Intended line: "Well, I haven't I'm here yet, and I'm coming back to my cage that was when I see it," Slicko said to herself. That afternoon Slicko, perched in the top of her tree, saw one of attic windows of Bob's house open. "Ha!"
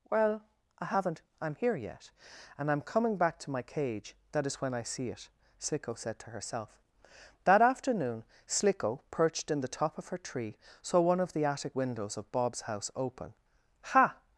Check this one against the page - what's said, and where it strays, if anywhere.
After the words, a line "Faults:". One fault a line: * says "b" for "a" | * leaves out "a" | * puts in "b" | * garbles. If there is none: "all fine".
"Well, I haven't I'm here yet, and I'm coming back to my cage that is when I see it," Slicko said to herself. That afternoon Slicko, perched in the top of her tree, saw one of the attic windows of Bob's house open. "Ha!"
Faults:
* says "is" for "was"
* puts in "the"